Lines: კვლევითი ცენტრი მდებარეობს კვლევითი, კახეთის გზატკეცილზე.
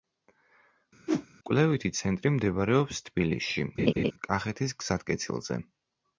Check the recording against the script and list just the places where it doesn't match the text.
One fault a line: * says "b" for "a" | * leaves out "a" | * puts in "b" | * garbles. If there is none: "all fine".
* says "თბილისში" for "კვლევითი"